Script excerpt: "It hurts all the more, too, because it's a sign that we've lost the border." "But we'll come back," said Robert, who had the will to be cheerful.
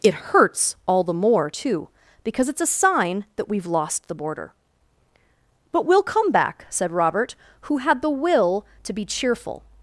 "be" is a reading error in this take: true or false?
false